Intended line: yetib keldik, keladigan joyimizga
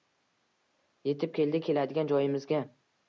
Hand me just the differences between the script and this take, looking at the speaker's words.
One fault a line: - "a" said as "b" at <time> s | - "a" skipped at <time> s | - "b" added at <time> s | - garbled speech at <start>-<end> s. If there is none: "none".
none